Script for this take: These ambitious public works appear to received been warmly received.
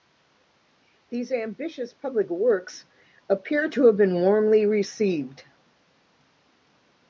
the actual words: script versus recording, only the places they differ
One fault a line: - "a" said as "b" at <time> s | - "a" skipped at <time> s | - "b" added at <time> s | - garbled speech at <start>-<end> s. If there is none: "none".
- "received" said as "have" at 3.9 s